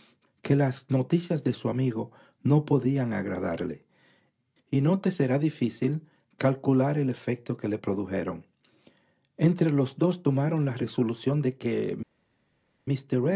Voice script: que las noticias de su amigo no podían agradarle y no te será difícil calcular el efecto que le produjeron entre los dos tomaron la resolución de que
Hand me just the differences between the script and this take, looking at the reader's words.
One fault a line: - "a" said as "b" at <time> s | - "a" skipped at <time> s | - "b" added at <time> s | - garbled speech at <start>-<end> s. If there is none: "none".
none